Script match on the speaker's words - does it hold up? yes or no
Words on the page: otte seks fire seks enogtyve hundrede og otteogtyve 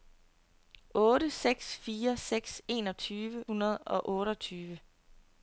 yes